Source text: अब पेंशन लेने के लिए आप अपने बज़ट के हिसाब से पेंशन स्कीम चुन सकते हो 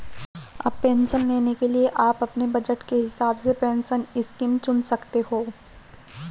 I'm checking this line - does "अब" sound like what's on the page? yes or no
yes